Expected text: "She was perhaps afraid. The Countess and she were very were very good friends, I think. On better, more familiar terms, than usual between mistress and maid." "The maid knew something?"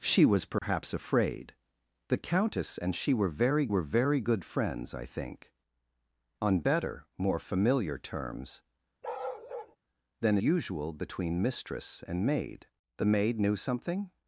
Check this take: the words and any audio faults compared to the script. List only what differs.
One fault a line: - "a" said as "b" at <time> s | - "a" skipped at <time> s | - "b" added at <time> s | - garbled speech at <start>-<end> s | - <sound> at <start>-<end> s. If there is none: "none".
- dropout at 0.6-0.6 s
- bark at 9.0-9.8 s